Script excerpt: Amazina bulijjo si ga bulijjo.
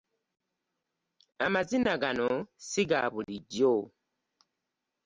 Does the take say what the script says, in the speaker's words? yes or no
no